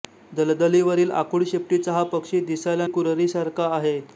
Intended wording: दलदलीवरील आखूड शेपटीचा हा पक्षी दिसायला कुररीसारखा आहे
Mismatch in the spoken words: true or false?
false